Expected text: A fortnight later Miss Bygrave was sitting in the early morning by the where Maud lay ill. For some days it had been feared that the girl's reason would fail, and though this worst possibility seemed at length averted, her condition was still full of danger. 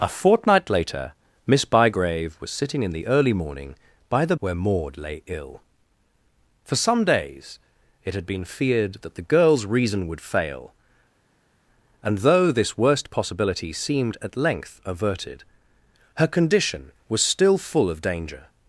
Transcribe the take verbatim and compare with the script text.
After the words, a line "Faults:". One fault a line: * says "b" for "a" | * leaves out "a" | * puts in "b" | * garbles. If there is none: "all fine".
A fortnight later Miss Bygrave was sitting in the early morning by the where Maud lay ill. For some days it had been feared that the girl's reason would fail, and though this worst possibility seemed at length averted, her condition was still full of danger.
Faults:
all fine